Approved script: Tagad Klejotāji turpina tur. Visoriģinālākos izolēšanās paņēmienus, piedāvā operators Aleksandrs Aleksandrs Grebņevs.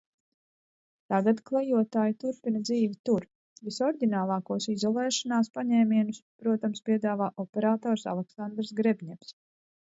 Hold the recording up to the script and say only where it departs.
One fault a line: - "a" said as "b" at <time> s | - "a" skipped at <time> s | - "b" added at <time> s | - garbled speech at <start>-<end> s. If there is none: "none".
- "dzīvi" added at 2.7 s
- "protams" added at 6.5 s
- "Aleksandrs" skipped at 8.7 s